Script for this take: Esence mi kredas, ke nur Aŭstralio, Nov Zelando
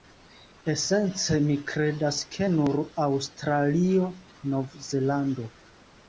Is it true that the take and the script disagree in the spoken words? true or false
false